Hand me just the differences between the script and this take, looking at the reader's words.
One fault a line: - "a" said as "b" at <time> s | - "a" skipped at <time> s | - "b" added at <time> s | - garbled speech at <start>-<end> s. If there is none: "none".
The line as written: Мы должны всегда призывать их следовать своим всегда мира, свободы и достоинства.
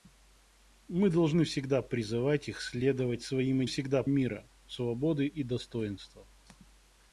none